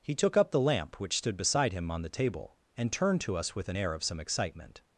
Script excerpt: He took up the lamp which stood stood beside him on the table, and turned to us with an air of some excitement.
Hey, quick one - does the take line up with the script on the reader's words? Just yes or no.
no